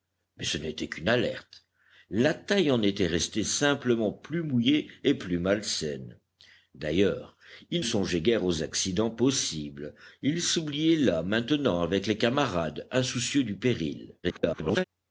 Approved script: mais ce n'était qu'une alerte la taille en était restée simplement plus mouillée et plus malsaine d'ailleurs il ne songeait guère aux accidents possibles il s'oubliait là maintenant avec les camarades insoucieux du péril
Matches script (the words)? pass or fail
fail